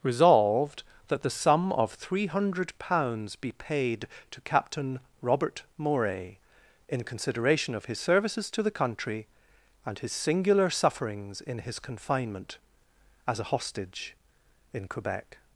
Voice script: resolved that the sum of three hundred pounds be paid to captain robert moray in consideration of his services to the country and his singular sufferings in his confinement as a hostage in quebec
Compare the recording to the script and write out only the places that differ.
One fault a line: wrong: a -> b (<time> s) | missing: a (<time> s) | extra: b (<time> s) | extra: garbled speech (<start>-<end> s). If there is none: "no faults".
no faults